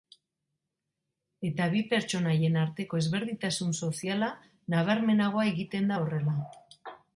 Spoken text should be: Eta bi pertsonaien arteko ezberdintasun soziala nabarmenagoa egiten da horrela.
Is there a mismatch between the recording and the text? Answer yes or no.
no